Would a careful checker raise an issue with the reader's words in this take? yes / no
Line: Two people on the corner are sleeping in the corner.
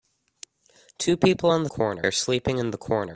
no